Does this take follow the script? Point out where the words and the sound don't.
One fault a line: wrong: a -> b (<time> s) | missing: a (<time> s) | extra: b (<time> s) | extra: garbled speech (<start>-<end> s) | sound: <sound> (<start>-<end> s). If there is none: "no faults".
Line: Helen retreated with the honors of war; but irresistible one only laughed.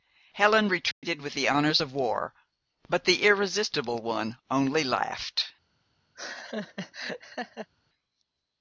sound: dropout (0.9-1.0 s)
extra: the (3.0 s)
sound: laugh (6.1-7.7 s)